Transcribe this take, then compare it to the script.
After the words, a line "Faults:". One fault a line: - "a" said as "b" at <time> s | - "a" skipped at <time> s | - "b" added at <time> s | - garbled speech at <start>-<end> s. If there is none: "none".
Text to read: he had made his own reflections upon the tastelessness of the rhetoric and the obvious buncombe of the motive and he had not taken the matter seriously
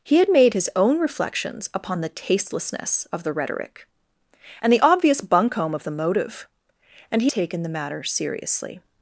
he had made his own reflections upon the tastelessness of the rhetoric and the obvious buncombe of the motive and he taken the matter seriously
Faults:
- "had not" skipped at 7.3 s